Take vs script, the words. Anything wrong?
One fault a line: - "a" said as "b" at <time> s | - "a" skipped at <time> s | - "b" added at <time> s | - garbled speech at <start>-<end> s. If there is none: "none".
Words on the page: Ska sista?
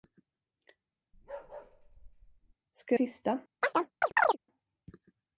none